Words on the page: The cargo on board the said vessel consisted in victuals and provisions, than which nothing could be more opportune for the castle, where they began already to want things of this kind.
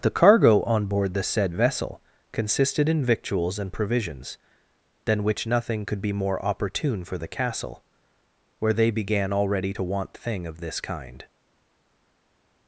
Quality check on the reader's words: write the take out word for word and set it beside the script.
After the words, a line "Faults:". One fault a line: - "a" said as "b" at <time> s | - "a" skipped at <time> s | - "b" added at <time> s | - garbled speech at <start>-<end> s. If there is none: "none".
The cargo on board the said vessel consisted in victuals and provisions, than which nothing could be more opportune for the castle, where they began already to want thing of this kind.
Faults:
- "things" said as "thing" at 10.1 s